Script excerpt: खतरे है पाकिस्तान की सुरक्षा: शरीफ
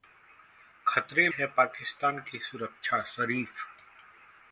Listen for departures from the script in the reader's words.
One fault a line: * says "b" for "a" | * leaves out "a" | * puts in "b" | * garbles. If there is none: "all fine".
all fine